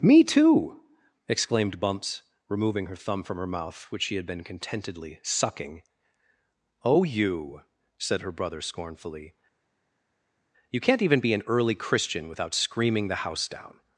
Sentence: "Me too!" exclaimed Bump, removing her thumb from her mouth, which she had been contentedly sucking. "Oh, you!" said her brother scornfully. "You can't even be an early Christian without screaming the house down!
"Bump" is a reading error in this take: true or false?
true